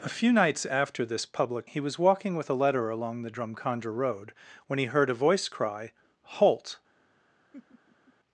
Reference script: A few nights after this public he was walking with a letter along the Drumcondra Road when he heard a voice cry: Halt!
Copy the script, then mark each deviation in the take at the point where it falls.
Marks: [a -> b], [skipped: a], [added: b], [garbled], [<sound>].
A few nights after this public he was walking with a letter along the Drumcondra Road when he heard a voice cry: Halt! [laugh]